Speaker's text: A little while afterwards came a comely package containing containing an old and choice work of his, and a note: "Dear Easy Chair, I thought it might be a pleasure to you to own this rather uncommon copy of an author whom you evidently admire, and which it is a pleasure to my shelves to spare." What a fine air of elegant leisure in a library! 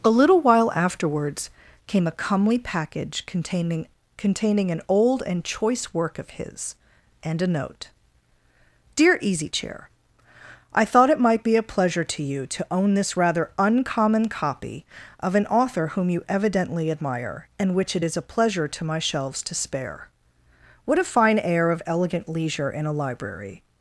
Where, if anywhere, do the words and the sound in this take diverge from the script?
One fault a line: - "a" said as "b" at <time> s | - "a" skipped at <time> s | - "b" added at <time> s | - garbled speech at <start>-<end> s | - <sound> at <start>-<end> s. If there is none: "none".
none